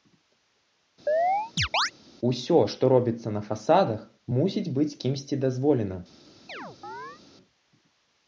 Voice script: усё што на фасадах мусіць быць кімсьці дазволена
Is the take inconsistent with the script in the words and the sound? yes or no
yes